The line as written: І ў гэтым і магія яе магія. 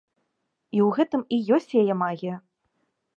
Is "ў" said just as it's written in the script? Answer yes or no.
yes